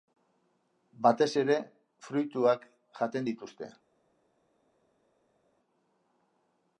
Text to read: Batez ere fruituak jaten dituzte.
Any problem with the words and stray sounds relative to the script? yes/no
no